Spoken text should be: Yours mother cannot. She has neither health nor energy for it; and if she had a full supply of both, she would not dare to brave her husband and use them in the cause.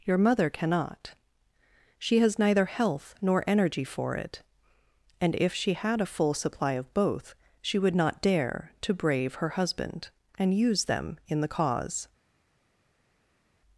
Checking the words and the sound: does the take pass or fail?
fail